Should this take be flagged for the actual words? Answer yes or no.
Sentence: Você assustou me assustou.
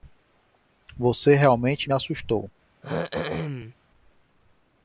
yes